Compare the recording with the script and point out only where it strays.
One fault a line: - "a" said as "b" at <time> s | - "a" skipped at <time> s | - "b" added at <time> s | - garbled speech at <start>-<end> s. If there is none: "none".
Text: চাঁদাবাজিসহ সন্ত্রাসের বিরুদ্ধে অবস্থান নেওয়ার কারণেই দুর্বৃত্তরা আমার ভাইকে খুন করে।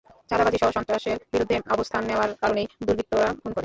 - "আমার ভাইকে" skipped at 3.3 s